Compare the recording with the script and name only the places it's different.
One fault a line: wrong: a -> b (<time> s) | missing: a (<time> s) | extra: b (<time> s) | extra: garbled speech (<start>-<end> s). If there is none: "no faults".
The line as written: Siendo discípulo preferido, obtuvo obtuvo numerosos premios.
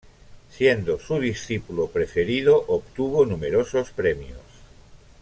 extra: su (1.0 s)
missing: obtuvo (3.2 s)